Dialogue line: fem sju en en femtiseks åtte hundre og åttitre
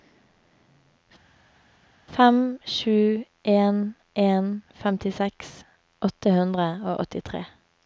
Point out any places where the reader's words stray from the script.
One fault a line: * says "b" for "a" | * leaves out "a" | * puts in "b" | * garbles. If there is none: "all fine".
all fine